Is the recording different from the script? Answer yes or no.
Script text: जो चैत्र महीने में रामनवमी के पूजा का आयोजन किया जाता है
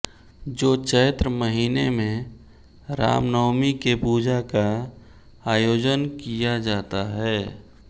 no